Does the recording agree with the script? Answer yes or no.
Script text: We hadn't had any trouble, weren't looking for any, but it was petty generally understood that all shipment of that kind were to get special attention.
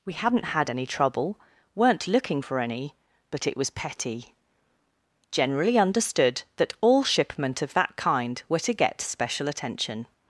yes